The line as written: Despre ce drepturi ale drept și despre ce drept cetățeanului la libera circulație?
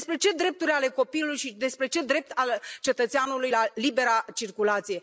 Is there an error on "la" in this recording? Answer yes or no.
no